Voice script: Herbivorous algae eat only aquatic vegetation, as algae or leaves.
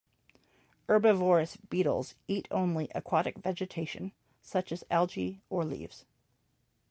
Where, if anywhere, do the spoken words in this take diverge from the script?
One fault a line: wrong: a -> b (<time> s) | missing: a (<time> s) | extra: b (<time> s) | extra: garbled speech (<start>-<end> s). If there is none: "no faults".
wrong: algae -> beetles (1.6 s)
extra: such (4.4 s)